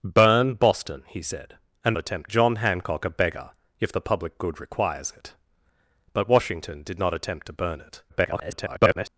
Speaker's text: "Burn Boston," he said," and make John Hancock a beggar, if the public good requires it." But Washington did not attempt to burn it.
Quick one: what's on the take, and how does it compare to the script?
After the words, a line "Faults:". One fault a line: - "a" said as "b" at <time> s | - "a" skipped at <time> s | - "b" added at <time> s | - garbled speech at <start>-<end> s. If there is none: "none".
"Burn Boston," he said," and attempt John Hancock a beggar, if the public good requires it." But Washington did not attempt to burn it. [garbled]
Faults:
- "make" said as "attempt" at 2.0 s
- garbled speech at 8.1-9.1 s